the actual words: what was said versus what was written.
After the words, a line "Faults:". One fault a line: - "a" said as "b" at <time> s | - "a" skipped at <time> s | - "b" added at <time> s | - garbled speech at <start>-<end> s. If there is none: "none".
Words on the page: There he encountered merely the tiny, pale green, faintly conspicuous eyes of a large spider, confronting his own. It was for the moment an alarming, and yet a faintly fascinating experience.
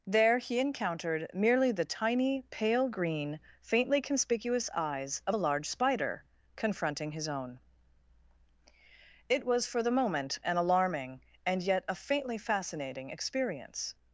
There he encountered merely the tiny, pale green, faintly conspicuous eyes of a large spider, confronting his own. It was for the moment an alarming, and yet a faintly fascinating experience.
Faults:
none